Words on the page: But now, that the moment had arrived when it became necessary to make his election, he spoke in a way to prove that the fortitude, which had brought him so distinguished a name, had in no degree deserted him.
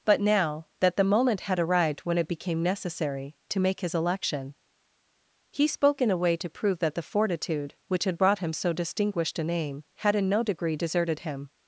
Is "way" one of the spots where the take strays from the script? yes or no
no